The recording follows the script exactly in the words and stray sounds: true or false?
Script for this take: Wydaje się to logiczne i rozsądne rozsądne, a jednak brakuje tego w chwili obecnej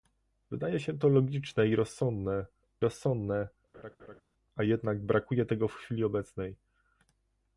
false